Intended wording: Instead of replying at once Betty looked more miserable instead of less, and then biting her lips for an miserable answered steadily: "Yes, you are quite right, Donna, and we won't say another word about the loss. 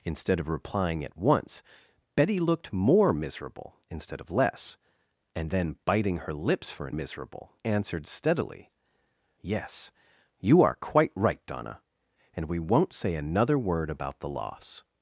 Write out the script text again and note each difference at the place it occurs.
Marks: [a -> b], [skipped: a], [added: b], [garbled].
Instead of replying at once Betty looked more miserable instead of less, and then biting her lips for an miserable answered steadily: "Yes, you are quite right, Donna, and we won't say another word about the loss.